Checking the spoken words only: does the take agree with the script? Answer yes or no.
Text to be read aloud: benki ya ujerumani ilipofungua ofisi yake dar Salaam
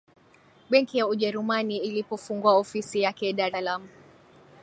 yes